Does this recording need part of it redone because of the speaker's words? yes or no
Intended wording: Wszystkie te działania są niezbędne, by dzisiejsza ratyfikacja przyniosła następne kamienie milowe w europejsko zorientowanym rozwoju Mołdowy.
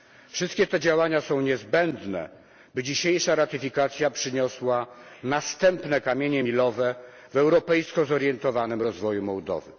no